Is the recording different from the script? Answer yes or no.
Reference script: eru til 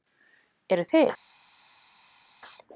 no